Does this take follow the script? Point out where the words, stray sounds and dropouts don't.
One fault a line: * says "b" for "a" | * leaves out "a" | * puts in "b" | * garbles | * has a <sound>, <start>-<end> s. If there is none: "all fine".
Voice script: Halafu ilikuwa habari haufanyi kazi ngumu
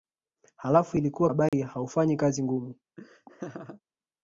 * has a dropout, 1.5-1.5 s
* has a laugh, 3.0-3.8 s